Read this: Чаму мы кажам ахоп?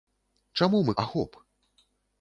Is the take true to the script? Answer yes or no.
no